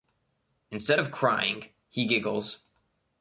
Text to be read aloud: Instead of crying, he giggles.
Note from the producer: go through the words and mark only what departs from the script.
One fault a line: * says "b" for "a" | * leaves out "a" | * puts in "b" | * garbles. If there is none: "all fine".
all fine